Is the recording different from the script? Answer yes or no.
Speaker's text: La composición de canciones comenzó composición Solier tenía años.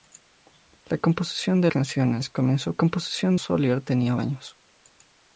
no